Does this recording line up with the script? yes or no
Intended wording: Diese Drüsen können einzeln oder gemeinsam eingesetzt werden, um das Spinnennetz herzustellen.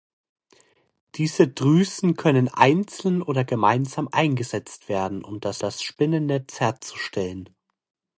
no